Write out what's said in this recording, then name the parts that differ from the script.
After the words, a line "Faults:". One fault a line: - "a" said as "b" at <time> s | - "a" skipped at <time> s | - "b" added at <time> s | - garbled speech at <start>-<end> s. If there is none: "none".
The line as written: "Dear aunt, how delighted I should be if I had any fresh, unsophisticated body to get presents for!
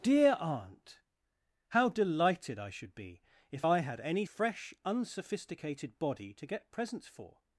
"Dear aunt, how delighted I should be if I had any fresh, unsophisticated body to get presents for!
Faults:
none